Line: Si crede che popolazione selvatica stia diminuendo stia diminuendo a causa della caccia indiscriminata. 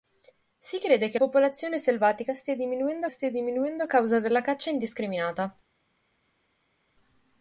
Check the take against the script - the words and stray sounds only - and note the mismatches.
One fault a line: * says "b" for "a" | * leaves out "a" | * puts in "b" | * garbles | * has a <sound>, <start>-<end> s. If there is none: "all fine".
all fine